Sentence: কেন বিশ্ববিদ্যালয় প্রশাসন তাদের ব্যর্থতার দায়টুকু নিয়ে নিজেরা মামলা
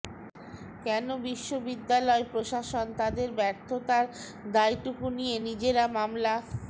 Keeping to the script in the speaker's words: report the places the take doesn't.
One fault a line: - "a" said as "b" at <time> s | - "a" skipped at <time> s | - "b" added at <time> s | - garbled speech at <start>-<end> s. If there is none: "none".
none